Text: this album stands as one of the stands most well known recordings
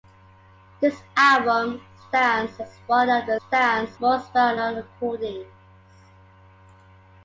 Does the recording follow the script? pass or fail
pass